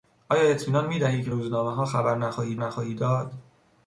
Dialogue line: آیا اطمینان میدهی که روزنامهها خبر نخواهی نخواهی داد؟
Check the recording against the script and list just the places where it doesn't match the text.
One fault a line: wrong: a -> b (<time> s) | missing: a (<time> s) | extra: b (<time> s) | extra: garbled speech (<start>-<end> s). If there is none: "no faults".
no faults